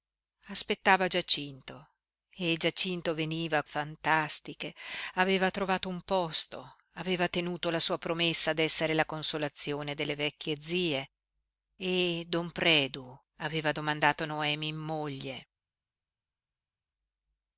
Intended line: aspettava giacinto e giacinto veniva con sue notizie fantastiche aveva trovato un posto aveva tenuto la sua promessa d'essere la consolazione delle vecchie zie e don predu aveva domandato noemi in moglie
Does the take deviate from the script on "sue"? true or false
true